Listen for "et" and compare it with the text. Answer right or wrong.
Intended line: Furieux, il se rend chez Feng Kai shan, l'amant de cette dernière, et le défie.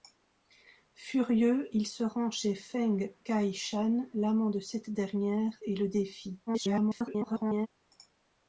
right